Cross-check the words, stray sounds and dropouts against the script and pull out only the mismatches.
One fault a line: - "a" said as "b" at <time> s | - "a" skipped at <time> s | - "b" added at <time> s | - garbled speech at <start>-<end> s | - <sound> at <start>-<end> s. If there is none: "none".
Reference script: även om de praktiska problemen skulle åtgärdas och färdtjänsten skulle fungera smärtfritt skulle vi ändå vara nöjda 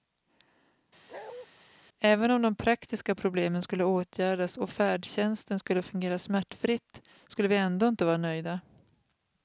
- bark at 1.1-1.5 s
- "inte" added at 7.9 s